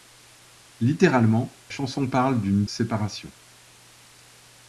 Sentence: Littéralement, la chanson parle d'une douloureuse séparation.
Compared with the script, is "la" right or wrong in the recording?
wrong